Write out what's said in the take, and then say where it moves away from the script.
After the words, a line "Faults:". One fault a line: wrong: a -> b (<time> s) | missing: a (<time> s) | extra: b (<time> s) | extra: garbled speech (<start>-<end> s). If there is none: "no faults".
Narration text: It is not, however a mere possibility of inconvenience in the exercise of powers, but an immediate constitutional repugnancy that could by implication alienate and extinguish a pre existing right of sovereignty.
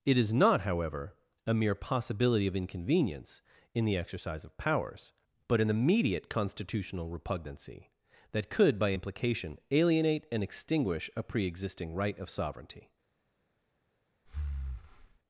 It is not, however a mere possibility of inconvenience in the exercise of powers, but an immediate constitutional repugnancy that could by implication alienate and extinguish a pre existing right of sovereignty.
Faults:
no faults